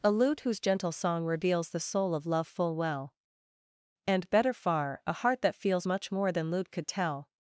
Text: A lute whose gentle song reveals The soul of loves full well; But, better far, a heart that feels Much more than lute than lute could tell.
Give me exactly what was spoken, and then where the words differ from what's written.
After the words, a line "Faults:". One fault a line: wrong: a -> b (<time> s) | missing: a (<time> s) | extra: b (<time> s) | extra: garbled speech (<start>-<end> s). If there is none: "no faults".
A lute whose gentle song reveals The soul of love full well; And, better far, a heart that feels Much more than lute could tell.
Faults:
wrong: loves -> love (2.2 s)
wrong: But -> And (4.1 s)
missing: than lute (6.7 s)